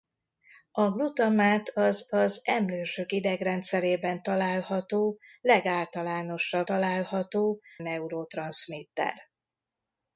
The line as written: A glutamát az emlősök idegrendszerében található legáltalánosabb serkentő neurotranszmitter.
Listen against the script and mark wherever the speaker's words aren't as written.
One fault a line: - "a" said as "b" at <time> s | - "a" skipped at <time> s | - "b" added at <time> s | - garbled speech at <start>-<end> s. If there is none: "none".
- "az" added at 2.0 s
- "serkentő" said as "található" at 6.6 s